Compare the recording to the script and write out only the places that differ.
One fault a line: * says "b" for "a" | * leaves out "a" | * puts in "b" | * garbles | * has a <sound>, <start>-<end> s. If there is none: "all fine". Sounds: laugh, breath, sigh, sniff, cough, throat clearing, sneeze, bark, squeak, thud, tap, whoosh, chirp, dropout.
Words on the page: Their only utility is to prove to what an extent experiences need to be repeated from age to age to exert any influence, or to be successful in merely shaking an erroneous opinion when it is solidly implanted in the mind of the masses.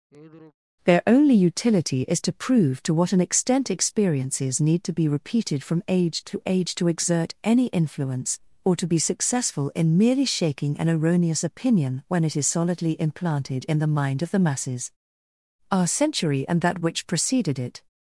* has a sigh, 0.1-0.5 s
* puts in "Our century and that which preceded it"